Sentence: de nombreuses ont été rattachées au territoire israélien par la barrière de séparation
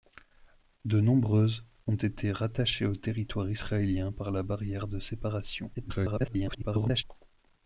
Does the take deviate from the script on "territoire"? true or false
false